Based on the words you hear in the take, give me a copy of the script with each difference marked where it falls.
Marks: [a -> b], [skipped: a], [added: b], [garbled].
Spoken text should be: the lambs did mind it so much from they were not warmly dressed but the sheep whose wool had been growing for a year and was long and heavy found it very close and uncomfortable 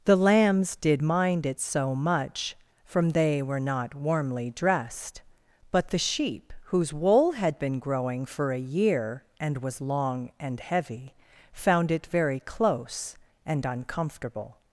the lambs did mind it so much from they were not warmly dressed but the sheep whose wool had been growing for a year and was long and heavy found it very close and uncomfortable